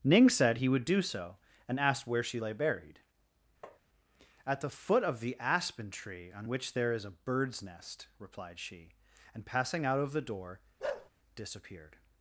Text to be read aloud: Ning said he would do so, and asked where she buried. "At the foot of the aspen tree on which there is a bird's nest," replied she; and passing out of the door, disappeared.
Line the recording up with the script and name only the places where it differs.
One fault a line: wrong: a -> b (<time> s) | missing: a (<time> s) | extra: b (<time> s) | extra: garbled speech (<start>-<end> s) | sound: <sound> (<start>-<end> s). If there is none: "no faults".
extra: lay (2.4 s)
sound: tap (3.6-3.8 s)
sound: bark (10.8-11.1 s)